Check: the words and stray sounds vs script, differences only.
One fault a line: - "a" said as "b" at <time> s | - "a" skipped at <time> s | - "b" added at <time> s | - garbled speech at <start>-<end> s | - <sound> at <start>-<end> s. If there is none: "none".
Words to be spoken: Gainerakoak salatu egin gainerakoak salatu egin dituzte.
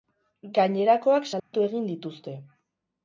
- dropout at 1.4-1.5 s
- "gainerakoak salatu egin" skipped at 1.9 s